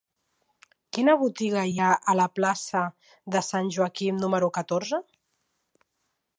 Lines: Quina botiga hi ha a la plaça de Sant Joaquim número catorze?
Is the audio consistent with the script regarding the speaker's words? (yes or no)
yes